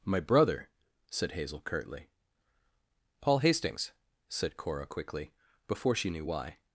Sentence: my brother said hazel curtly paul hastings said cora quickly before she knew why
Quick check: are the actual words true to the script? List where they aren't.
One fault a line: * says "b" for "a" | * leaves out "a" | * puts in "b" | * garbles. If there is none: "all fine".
all fine